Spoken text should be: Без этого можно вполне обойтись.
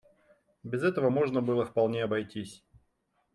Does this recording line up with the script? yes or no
no